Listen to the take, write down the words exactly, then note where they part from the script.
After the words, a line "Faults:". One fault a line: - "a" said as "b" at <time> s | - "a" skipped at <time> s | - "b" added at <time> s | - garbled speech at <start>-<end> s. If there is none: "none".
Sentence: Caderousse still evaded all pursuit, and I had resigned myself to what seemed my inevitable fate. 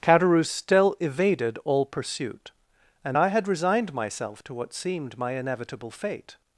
Caderousse still evaded all pursuit, and I had resigned myself to what seemed my inevitable fate.
Faults:
none